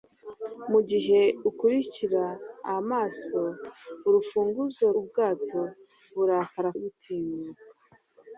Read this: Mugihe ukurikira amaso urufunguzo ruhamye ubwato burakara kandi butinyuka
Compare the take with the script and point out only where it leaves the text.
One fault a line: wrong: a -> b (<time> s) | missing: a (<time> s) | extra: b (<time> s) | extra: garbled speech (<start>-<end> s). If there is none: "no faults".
missing: ruhamye (4.8 s)
missing: kandi (6.7 s)